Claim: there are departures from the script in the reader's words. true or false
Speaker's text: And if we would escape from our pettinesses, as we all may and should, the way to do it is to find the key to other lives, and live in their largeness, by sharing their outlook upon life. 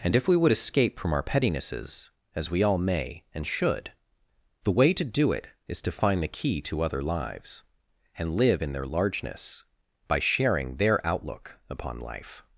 false